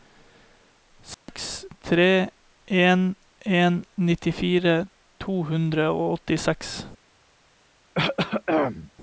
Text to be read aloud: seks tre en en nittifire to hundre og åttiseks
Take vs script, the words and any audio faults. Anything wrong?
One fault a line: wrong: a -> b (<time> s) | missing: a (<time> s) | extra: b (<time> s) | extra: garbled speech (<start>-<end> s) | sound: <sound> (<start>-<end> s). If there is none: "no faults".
sound: dropout (1.1-1.3 s)
sound: throat clearing (7.9-8.9 s)